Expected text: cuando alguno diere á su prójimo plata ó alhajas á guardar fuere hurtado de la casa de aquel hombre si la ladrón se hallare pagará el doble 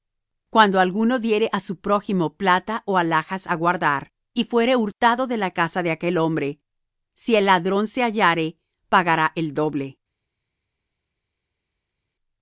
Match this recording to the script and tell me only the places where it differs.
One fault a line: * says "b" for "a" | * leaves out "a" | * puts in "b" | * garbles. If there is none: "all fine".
* puts in "y"
* says "el" for "la"